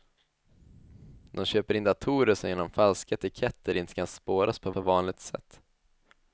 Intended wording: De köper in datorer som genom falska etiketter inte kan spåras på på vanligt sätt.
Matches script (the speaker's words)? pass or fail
pass